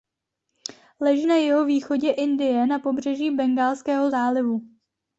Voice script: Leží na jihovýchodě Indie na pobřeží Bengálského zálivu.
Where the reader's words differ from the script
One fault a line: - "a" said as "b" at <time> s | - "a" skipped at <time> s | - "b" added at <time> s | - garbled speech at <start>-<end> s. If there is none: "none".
none